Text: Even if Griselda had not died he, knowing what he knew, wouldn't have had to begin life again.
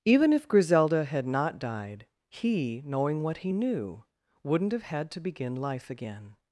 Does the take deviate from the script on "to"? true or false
false